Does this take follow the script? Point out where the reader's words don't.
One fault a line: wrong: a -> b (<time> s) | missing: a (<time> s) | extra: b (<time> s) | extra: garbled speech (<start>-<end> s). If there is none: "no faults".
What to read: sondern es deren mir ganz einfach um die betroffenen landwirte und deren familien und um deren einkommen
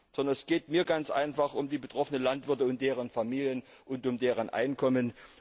wrong: deren -> geht (0.5 s)